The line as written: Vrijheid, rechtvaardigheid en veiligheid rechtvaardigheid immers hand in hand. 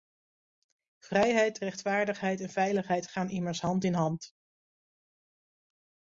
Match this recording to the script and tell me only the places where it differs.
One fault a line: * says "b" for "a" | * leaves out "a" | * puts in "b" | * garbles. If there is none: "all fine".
* says "gaan" for "rechtvaardigheid"